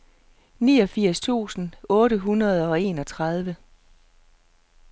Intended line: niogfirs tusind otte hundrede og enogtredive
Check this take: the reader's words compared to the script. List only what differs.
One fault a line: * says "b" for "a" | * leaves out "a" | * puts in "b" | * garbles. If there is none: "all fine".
all fine